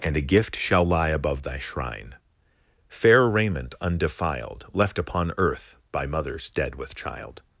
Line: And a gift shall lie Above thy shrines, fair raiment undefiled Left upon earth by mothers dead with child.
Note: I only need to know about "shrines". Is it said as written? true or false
false